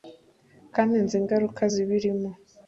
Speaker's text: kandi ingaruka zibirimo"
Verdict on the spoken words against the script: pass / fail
fail